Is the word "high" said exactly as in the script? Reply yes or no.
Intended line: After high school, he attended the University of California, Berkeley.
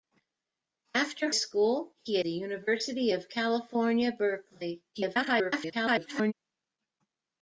no